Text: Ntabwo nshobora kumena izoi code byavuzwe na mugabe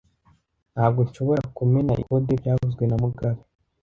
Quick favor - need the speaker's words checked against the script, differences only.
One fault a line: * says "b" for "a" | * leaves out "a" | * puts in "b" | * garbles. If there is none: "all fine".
* leaves out "izoi"